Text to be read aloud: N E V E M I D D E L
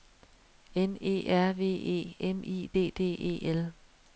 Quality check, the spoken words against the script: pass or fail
fail